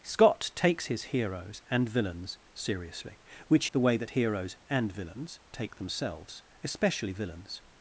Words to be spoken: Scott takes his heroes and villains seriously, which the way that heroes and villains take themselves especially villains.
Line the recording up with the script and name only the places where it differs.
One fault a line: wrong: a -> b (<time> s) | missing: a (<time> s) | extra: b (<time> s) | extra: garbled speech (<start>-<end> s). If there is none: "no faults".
no faults